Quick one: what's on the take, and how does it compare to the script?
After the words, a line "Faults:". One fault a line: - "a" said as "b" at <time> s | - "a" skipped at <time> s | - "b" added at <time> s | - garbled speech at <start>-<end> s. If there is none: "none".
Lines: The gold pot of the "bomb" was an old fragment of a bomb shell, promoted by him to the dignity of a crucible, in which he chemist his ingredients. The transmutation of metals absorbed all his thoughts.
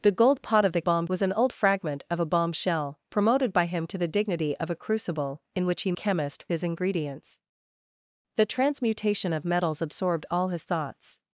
The gold pot of the "bomb" was an old fragment of a bomb shell, promoted by him to the dignity of a crucible, in which he chemist his ingredients. The transmutation of metals absorbed all his thoughts.
Faults:
none